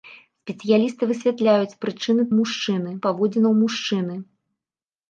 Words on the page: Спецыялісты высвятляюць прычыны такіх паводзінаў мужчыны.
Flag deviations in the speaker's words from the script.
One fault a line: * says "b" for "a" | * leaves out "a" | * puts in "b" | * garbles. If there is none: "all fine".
* says "мужчыны" for "такіх"